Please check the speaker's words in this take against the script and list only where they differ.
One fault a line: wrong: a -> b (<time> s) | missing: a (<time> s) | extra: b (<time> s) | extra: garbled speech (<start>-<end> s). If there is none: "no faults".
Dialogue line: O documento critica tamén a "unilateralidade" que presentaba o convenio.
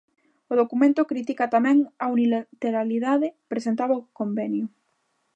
missing: que (3.3 s)